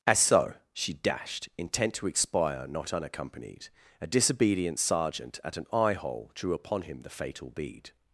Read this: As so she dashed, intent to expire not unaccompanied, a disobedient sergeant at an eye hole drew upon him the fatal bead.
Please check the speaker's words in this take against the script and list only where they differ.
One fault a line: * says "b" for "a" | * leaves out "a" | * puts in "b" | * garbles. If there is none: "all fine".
all fine